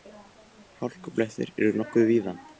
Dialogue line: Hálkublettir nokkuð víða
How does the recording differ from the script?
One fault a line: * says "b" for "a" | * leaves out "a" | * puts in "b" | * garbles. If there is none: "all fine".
* puts in "eru"